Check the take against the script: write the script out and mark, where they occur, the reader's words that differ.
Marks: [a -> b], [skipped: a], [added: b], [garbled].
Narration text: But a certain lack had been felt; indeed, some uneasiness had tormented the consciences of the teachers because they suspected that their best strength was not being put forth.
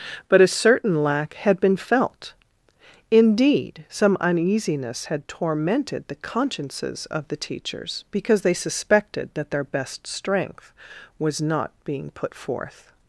But a certain lack had been felt; indeed, some uneasiness had tormented the consciences of the teachers because they suspected that their best strength was not being put forth.